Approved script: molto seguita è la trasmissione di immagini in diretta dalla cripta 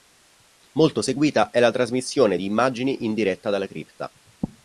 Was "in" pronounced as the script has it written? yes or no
yes